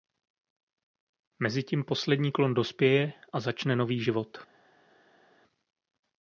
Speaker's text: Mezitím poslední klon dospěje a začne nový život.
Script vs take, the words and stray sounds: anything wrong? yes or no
no